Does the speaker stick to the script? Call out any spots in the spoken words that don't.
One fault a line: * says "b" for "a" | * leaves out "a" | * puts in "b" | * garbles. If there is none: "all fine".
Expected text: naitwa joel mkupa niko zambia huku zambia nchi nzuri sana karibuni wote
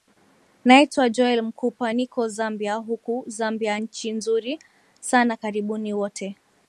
all fine